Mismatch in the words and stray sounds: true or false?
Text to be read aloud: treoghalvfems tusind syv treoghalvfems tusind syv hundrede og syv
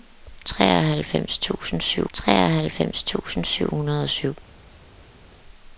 false